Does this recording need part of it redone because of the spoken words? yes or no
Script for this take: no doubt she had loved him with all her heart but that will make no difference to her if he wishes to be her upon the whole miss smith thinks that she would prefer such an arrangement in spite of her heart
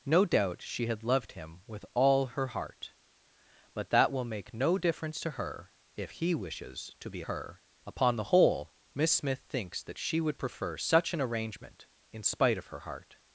no